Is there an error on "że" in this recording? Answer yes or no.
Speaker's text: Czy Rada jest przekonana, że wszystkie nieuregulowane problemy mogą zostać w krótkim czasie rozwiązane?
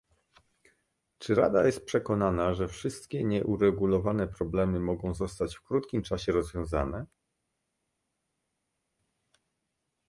no